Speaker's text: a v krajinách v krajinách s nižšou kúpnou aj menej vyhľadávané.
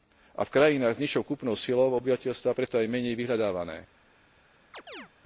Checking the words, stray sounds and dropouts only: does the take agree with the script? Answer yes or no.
no